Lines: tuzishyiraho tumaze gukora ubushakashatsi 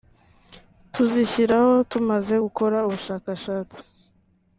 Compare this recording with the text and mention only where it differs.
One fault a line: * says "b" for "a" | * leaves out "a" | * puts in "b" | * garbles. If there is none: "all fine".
all fine